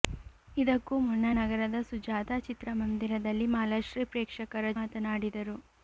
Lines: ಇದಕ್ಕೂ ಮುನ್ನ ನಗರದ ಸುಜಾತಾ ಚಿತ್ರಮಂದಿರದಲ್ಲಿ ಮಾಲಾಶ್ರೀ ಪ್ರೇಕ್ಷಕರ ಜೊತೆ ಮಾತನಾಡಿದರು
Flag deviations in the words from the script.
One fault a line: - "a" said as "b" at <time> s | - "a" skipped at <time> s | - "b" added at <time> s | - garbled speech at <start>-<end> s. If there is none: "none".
- "ಜೊತೆ" skipped at 4.7 s